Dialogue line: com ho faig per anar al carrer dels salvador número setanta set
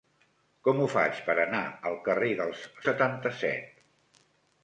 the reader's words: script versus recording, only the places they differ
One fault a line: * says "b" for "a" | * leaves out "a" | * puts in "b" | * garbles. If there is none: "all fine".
* leaves out "salvador número"